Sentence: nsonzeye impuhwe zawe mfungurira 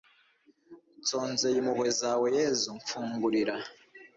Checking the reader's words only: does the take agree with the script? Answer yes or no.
no